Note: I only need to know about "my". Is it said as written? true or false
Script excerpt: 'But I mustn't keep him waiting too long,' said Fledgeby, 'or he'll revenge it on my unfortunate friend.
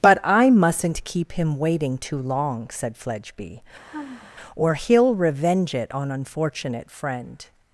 false